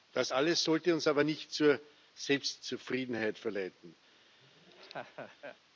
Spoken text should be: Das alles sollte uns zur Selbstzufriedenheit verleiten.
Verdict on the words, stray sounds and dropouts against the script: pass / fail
fail